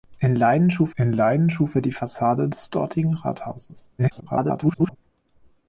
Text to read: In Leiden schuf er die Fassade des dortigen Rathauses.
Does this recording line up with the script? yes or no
no